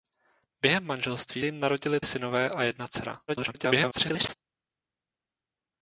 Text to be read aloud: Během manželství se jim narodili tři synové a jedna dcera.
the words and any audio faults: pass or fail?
fail